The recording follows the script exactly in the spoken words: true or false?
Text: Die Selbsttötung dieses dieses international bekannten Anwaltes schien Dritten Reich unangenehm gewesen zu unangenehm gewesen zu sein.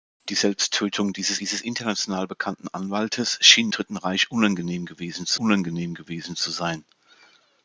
true